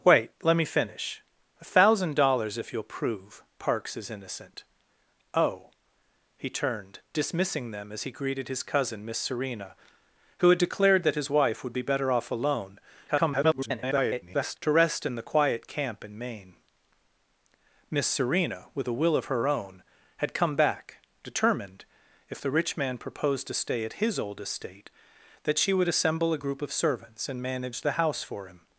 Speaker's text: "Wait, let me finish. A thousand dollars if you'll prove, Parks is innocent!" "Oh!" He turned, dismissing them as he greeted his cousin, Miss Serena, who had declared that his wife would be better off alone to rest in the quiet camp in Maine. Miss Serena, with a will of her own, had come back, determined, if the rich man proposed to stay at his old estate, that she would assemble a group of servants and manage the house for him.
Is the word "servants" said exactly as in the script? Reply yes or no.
yes